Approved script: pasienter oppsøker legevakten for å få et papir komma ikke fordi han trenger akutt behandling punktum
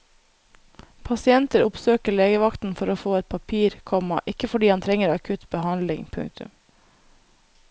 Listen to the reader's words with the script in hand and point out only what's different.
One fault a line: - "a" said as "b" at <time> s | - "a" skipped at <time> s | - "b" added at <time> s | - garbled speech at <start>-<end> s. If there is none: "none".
none